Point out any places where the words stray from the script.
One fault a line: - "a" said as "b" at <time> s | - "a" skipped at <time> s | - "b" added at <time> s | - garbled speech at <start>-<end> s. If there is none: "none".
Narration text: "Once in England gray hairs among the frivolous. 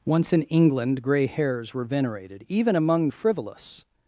- "were venerated even" added at 1.7 s